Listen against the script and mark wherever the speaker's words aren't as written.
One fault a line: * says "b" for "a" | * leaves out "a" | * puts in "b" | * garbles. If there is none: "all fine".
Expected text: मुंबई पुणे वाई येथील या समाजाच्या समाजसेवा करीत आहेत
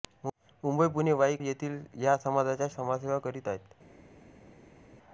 all fine